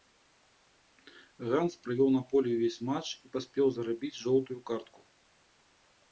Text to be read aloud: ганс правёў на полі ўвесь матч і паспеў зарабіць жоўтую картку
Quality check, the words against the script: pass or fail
pass